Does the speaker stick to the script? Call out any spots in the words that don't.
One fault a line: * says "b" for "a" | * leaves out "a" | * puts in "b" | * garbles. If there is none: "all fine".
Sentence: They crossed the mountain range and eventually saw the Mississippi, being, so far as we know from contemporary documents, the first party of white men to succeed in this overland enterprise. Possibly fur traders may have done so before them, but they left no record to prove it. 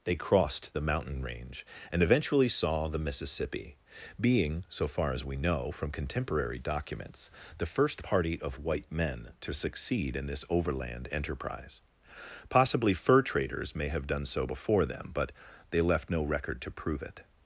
all fine